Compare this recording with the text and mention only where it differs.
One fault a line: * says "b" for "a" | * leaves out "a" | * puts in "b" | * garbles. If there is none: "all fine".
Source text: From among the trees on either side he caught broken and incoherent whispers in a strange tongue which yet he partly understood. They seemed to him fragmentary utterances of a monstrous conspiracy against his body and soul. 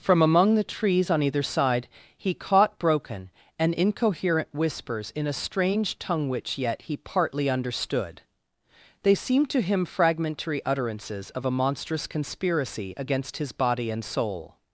all fine